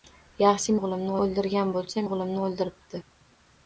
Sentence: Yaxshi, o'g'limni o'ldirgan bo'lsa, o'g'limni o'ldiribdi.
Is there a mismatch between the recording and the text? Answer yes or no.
no